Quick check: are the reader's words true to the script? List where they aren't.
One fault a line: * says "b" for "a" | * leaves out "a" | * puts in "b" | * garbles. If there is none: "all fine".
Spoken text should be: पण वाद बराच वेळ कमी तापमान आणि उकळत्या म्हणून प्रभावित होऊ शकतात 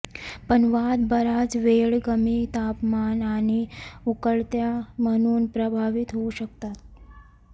all fine